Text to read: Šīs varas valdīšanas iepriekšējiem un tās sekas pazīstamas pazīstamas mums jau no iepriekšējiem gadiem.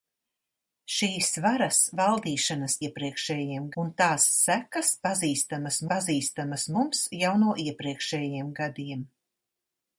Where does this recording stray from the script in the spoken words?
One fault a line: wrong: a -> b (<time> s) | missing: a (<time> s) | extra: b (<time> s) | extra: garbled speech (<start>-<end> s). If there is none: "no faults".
no faults